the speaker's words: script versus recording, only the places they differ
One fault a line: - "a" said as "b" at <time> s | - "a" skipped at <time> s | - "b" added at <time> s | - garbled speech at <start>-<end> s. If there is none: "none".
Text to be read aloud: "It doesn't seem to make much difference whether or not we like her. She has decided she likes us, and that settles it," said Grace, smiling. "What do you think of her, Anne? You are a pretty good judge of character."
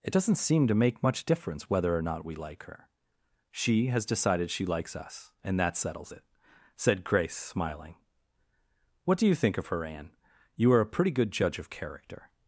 none